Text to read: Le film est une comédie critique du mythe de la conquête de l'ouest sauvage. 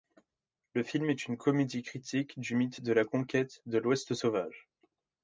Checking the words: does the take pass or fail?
pass